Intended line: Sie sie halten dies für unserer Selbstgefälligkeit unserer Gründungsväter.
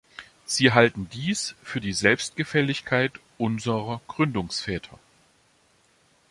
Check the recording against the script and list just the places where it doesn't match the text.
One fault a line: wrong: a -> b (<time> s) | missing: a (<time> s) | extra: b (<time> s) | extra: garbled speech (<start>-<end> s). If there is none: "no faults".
missing: sie (0.7 s)
wrong: unserer -> die (1.8 s)